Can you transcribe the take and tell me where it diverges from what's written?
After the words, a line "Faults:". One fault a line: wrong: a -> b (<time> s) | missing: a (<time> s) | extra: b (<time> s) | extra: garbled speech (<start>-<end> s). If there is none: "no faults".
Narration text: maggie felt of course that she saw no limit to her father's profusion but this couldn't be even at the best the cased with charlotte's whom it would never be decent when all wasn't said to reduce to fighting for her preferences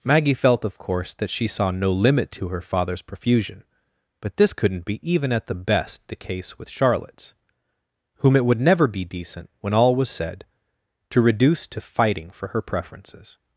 maggie felt of course that she saw no limit to her father's profusion but this couldn't be even at the best the case with charlotte's whom it would never be decent when all was said to reduce to fighting for her preferences
Faults:
wrong: cased -> case (6.2 s)
wrong: wasn't -> was (10.0 s)